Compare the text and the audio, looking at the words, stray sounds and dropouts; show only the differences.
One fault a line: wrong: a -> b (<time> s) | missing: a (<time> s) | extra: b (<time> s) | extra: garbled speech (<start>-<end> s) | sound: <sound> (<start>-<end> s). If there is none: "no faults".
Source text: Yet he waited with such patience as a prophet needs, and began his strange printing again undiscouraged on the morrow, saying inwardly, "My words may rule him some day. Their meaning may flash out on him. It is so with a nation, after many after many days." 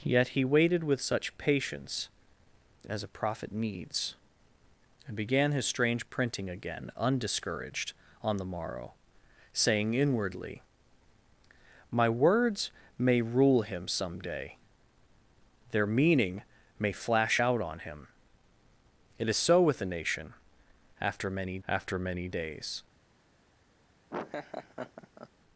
sound: laugh (24.1-25.3 s)